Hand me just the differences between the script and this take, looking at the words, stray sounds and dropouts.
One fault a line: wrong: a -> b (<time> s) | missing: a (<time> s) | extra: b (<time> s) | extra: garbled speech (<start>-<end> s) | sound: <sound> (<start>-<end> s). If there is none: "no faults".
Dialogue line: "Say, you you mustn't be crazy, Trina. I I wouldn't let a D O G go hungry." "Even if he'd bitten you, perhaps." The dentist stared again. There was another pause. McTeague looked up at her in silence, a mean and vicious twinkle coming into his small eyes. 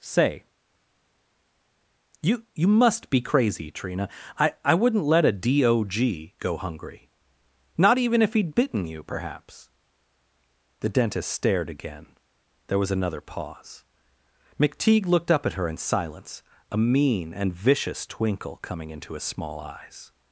wrong: mustn't -> must (2.7 s)
extra: Not (7.8 s)